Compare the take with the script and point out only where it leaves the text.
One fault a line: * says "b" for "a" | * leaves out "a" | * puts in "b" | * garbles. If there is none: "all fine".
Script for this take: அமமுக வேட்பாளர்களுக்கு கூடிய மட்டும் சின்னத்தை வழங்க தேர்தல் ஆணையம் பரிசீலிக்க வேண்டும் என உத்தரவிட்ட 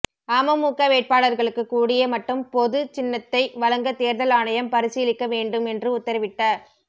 * puts in "பொது"
* says "என்று" for "என"